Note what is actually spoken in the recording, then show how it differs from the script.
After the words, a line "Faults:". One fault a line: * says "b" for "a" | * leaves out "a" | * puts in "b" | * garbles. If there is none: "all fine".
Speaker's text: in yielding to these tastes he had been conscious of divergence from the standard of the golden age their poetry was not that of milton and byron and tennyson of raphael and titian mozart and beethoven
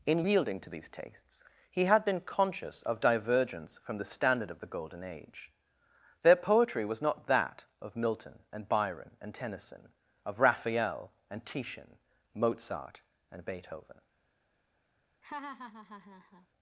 in yielding to these tastes he had been conscious of divergence from the standard of the golden age their poetry was not that of milton and byron and tennyson of raphael and titian mozart and beethoven
Faults:
all fine